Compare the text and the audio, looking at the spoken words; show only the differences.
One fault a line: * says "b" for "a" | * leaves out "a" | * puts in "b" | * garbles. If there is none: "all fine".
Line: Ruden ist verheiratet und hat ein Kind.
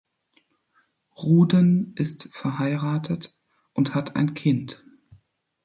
all fine